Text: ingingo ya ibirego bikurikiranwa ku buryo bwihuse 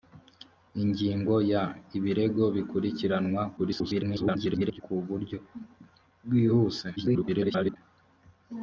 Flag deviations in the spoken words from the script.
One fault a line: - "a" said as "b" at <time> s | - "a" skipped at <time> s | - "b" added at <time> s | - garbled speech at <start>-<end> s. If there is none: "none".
- garbled speech at 3.6-4.8 s
- garbled speech at 7.0-7.8 s